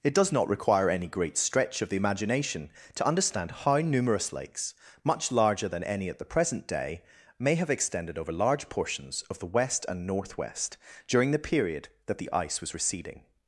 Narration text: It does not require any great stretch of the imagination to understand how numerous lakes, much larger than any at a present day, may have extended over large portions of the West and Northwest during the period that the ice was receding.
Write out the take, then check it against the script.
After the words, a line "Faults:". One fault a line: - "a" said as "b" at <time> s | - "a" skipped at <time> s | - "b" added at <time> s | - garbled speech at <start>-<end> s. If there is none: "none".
It does not require any great stretch of the imagination to understand how numerous lakes, much larger than any at the present day, may have extended over large portions of the West and Northwest during the period that the ice was receding.
Faults:
- "a" said as "the" at 6.2 s